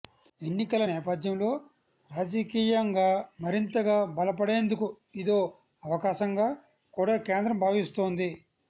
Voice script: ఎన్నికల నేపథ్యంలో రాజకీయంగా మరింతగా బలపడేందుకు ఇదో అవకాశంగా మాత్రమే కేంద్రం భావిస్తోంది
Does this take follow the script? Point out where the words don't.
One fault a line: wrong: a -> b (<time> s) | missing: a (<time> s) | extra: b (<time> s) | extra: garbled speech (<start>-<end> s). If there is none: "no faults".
wrong: మాత్రమే -> కూడా (6.9 s)